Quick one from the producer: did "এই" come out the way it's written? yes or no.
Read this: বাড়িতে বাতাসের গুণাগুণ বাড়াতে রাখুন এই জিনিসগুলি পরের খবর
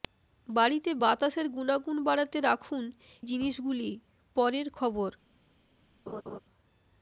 no